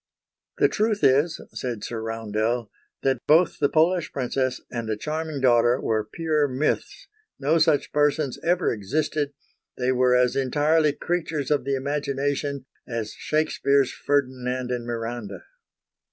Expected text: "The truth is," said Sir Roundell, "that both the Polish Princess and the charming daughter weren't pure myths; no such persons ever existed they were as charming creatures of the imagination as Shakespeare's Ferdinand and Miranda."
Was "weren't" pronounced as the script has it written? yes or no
no